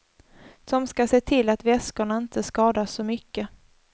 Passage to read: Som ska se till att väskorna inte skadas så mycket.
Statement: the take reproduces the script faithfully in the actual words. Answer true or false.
true